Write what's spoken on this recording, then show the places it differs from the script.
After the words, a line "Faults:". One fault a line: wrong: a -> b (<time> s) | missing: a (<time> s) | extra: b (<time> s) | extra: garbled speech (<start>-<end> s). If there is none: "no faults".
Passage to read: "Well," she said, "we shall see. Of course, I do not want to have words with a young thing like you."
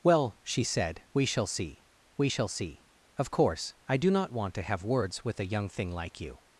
"Well," she said, "we shall see we shall see. Of course, I do not want to have words with a young thing like you."
Faults:
extra: we shall see (2.2 s)